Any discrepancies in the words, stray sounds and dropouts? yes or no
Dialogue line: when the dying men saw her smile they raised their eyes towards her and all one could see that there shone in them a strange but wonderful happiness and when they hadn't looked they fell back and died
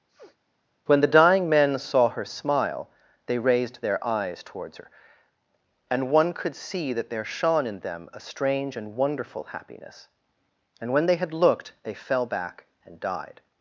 yes